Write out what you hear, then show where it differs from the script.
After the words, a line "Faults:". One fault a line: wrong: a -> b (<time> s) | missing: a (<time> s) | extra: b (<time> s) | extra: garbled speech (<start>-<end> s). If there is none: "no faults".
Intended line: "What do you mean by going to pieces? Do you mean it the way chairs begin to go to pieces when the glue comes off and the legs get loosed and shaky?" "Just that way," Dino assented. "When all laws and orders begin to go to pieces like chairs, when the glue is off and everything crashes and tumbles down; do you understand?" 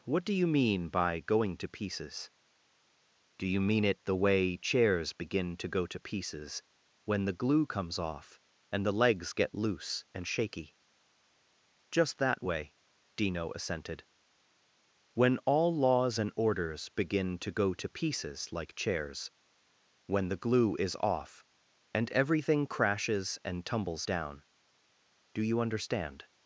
"What do you mean by going to pieces? Do you mean it the way chairs begin to go to pieces when the glue comes off and the legs get loose and shaky?" "Just that way," Dino assented. "When all laws and orders begin to go to pieces like chairs, when the glue is off and everything crashes and tumbles down; do you understand?"
Faults:
wrong: loosed -> loose (9.5 s)